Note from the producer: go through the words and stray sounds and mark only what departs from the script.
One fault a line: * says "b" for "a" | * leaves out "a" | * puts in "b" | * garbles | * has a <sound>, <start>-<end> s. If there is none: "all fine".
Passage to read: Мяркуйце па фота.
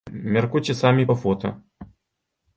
* puts in "самі"